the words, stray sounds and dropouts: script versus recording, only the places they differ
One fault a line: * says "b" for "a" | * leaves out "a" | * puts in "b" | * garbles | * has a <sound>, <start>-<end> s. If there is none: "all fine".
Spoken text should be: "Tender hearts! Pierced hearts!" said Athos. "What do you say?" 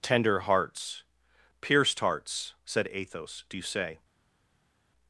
* leaves out "What"